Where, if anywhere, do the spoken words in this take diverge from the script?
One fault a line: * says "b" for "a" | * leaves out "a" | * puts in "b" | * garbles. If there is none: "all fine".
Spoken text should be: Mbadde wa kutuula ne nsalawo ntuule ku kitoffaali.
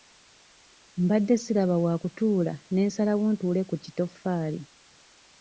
* puts in "siraba"